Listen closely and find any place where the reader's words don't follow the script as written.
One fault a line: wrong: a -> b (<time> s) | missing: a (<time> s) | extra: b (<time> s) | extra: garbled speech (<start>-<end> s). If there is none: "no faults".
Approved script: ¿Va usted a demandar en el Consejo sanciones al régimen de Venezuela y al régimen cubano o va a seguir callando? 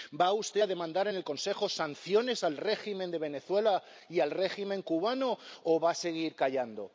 no faults